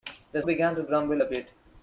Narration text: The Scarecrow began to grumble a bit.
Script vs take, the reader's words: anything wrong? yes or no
yes